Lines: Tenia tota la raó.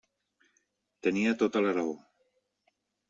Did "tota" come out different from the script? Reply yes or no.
no